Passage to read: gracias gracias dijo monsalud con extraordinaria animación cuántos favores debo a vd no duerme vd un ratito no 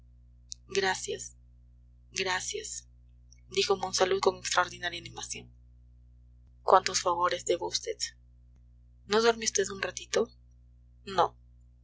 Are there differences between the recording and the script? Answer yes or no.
no